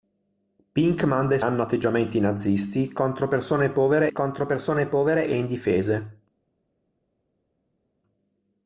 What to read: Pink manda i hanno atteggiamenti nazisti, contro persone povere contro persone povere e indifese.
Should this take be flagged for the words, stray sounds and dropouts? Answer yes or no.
no